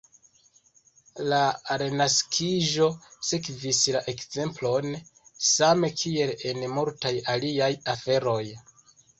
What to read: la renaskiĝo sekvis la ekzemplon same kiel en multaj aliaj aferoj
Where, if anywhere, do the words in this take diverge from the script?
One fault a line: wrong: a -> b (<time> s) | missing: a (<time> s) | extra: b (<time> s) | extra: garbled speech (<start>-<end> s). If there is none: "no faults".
no faults